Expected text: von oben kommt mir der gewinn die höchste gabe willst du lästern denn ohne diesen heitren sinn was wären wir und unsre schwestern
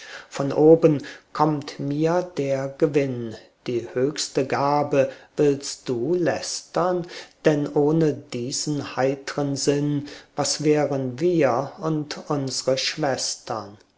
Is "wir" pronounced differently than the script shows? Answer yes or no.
no